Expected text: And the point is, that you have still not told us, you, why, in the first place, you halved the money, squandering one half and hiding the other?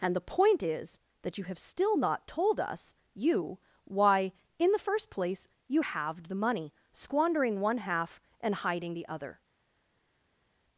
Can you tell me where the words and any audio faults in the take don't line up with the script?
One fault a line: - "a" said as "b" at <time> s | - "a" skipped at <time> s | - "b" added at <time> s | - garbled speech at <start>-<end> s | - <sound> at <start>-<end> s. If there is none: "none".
none